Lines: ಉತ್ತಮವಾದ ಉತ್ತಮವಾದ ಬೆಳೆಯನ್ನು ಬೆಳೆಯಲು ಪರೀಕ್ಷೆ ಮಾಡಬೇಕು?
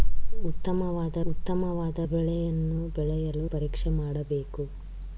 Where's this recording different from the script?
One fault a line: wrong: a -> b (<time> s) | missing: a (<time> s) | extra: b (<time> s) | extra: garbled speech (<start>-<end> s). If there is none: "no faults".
no faults